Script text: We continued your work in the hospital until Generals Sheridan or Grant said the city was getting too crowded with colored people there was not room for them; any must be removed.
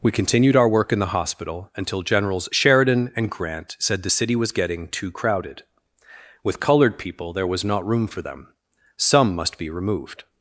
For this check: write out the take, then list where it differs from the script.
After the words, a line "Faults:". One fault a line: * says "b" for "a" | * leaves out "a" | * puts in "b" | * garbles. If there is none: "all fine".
We continued our work in the hospital until Generals Sheridan and Grant said the city was getting too crowded with colored people there was not room for them; some must be removed.
Faults:
* says "our" for "your"
* says "and" for "or"
* says "some" for "any"